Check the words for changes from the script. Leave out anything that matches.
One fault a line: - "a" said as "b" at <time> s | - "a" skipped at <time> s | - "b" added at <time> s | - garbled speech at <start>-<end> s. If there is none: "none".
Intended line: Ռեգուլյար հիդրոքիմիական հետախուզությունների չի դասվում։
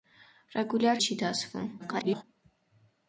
- "հիդրոքիմիական հետախուզությունների" skipped at 1.0 s
- garbled speech at 1.8-2.2 s